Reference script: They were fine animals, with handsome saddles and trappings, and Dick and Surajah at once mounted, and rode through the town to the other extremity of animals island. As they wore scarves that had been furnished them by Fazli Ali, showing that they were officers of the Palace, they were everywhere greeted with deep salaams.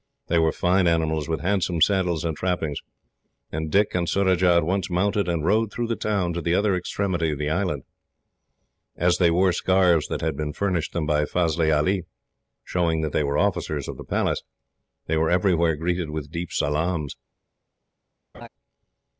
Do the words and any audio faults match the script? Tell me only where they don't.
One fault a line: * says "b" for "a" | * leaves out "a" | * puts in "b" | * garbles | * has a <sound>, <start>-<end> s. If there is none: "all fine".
* says "the" for "animals"
* has a laugh, 18.3-18.5 s